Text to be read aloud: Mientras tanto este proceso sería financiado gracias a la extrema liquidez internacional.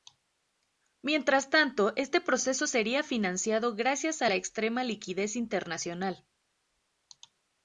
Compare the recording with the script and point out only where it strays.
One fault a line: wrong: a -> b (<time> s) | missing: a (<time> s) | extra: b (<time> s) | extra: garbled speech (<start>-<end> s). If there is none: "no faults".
no faults